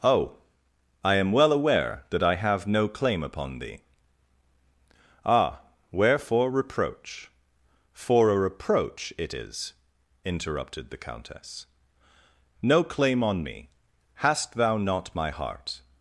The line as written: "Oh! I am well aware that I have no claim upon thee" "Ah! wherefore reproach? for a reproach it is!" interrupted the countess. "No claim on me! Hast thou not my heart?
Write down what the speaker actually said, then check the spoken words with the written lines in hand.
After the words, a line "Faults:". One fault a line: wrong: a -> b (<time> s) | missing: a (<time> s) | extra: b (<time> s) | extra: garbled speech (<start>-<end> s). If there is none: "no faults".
"Oh! I am well aware that I have no claim upon thee" "Ah! wherefore reproach? for a reproach it is!" interrupted the countess. "No claim on me! Hast thou not my heart?
Faults:
no faults